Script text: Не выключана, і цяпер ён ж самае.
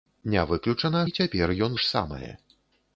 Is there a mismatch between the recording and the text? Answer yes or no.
no